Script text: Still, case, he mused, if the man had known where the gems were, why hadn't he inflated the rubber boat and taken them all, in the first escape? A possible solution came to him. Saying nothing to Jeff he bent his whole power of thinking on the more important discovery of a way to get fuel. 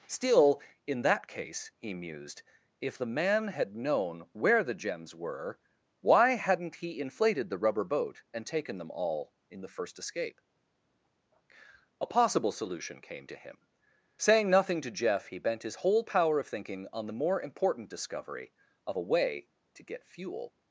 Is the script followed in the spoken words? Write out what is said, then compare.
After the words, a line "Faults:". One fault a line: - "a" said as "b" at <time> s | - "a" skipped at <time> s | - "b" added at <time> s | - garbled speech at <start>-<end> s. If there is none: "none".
Still, in that case, he mused, if the man had known where the gems were, why hadn't he inflated the rubber boat and taken them all, in the first escape? A possible solution came to him. Saying nothing to Jeff he bent his whole power of thinking on the more important discovery of a way to get fuel.
Faults:
- "in that" added at 0.9 s